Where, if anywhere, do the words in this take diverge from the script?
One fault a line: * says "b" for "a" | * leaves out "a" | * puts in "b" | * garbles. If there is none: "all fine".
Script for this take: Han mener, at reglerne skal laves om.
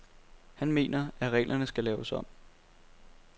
all fine